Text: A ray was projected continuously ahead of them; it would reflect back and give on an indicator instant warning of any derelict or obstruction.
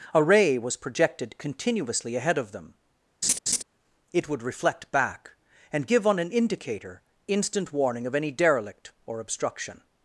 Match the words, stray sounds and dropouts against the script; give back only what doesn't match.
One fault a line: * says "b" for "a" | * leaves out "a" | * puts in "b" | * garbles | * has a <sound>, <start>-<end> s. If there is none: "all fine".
* has a laugh, 3.2-3.6 s